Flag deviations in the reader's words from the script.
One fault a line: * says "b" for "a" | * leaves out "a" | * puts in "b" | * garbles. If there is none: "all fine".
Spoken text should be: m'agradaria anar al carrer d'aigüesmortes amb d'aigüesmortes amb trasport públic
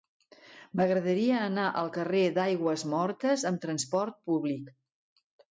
* leaves out "d'aigüesmortes amb"